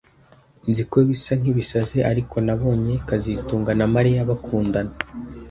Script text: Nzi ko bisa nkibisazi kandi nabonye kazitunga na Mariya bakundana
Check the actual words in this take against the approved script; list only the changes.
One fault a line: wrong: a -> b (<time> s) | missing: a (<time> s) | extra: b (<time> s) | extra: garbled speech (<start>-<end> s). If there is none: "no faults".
wrong: kandi -> ariko (2.1 s)